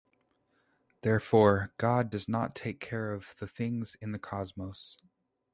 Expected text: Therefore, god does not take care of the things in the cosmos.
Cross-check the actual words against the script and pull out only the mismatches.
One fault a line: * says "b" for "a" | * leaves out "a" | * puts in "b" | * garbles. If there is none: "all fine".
all fine